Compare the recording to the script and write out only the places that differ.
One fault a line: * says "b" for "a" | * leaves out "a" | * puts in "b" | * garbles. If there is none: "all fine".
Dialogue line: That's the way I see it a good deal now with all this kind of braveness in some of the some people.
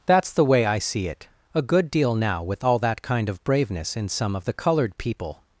* says "that" for "this"
* says "colored" for "some"